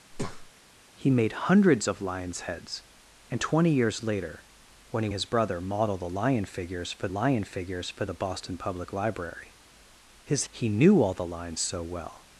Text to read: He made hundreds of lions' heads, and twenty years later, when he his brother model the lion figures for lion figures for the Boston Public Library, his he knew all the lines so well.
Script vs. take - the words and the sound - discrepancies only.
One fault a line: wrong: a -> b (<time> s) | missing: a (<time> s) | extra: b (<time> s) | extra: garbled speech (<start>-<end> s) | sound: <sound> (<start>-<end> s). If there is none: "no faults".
sound: breath (0.1-0.5 s)